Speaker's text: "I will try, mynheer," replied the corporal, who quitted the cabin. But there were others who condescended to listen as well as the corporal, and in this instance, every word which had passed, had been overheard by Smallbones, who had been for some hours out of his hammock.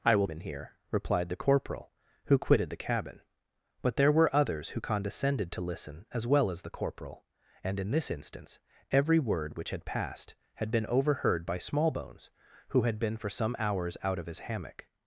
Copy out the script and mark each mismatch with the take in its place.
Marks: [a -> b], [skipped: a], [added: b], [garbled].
"I will [skipped: try,] mynheer," replied the corporal, who quitted the cabin. But there were others who condescended to listen as well as the corporal, and in this instance, every word which had passed, had been overheard by Smallbones, who had been for some hours out of his hammock.